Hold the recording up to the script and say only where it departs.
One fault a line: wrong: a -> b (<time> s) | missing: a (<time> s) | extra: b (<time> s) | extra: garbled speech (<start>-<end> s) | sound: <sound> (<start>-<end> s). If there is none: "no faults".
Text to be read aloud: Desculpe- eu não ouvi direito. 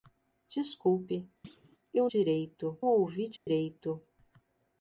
sound: thud (1.4-1.8 s)
wrong: não -> direito (2.0 s)
sound: dropout (3.4-3.5 s)